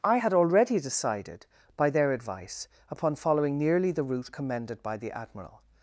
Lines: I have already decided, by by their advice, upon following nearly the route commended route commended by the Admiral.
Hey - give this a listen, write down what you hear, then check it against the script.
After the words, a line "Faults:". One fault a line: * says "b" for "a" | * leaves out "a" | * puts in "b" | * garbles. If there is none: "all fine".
I had already decided, by their advice, upon following nearly the route commended by the Admiral.
Faults:
* says "had" for "have"
* leaves out "by"
* leaves out "route commended"